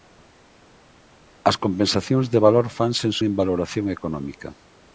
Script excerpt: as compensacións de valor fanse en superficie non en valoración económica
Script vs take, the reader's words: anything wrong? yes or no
yes